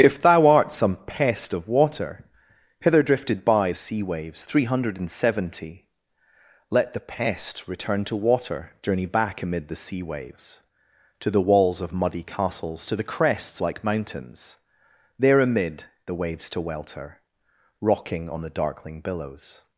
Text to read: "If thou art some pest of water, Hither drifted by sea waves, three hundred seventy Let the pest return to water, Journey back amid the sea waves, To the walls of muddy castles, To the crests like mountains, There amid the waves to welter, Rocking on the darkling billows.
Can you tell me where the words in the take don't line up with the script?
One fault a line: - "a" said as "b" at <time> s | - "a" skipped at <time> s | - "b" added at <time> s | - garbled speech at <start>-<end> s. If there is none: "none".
none